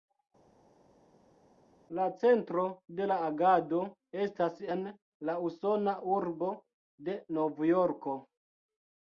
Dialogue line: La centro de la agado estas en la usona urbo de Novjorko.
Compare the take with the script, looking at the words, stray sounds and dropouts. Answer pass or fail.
pass